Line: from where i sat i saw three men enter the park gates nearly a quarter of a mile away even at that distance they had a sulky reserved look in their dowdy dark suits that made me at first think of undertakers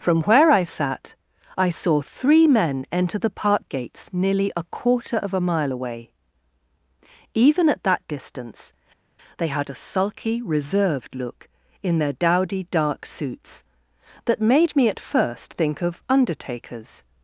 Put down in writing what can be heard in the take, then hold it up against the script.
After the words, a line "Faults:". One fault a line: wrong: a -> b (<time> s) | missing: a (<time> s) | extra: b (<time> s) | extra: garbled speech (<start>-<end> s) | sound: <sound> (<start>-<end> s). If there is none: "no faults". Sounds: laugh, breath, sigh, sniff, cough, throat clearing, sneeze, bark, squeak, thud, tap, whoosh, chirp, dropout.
from where i sat i saw three men enter the park gates nearly a quarter of a mile away even at that distance they had a sulky reserved look in their dowdy dark suits that made me at first think of undertakers
Faults:
no faults